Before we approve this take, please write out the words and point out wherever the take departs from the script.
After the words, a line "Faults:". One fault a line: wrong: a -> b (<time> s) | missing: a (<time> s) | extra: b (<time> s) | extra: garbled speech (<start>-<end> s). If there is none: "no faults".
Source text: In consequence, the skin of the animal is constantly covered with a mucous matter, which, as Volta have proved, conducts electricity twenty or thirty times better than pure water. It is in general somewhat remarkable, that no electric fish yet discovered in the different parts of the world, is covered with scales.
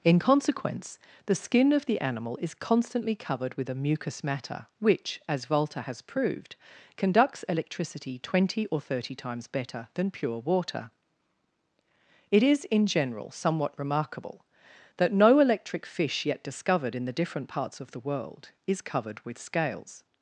In consequence, the skin of the animal is constantly covered with a mucous matter, which, as Volta has proved, conducts electricity twenty or thirty times better than pure water. It is in general somewhat remarkable, that no electric fish yet discovered in the different parts of the world, is covered with scales.
Faults:
wrong: have -> has (5.8 s)